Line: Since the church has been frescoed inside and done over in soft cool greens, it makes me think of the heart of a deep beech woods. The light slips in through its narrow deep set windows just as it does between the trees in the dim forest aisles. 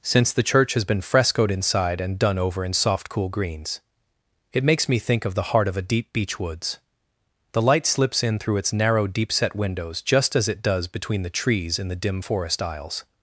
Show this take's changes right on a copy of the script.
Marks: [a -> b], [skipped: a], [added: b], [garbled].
Since the church has been frescoed inside and done over in soft cool greens, it makes me think of the heart of a deep beech woods. The light slips in through its narrow deep set windows just as it does between the trees in the dim forest aisles.